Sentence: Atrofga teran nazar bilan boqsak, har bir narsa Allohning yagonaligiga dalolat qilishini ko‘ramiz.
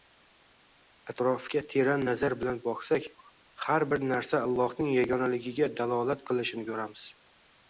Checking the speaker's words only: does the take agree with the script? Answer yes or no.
yes